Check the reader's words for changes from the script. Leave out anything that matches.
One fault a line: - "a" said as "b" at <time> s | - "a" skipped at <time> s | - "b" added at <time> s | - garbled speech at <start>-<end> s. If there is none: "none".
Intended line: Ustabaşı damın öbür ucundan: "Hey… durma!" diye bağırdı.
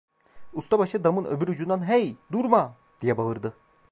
none